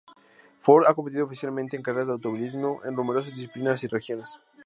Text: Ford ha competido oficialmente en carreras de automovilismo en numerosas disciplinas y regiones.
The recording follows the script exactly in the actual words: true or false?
true